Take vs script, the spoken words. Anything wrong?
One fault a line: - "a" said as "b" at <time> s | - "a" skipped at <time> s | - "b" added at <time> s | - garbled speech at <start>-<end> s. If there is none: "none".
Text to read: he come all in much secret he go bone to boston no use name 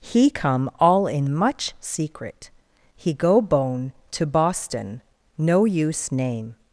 none